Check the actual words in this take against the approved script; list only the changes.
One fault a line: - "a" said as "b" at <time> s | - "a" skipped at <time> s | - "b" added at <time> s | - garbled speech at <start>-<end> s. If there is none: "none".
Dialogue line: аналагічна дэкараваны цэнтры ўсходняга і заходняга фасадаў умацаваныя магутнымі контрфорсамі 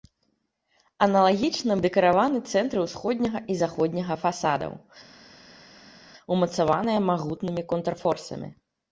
none